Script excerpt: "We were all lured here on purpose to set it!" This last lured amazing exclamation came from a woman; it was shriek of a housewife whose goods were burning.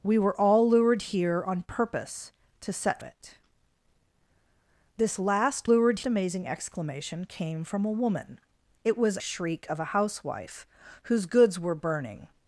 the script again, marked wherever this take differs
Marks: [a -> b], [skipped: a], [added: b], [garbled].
"We were all lured here on purpose to set it!" This last lured amazing exclamation came from a woman; it was shriek of a housewife whose goods were burning.